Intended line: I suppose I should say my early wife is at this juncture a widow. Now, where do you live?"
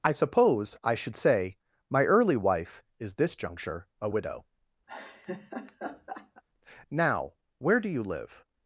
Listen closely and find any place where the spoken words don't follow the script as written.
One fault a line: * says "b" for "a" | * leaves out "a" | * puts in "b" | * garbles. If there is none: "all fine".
* leaves out "at"